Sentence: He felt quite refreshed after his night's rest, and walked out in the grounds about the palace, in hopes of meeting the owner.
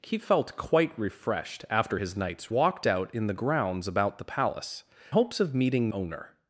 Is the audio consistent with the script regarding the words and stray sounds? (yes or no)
no